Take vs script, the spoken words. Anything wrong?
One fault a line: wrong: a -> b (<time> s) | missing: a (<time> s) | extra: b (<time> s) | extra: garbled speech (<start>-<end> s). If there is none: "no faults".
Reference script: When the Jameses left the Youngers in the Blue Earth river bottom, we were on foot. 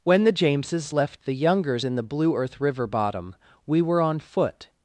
no faults